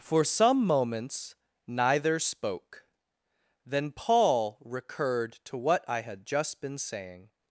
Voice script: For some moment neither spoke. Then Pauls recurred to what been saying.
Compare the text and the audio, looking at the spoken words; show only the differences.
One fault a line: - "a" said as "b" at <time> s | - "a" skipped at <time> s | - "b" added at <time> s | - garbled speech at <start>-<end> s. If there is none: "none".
- "moment" said as "moments" at 0.7 s
- "Pauls" said as "Paul" at 3.9 s
- "I had just" added at 5.9 s